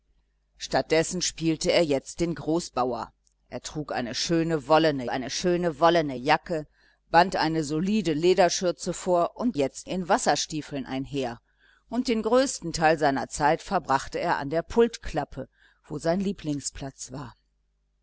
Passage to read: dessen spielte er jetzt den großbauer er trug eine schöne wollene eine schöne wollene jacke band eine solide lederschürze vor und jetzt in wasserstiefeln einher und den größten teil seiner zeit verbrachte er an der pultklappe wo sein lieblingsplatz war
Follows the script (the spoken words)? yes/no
yes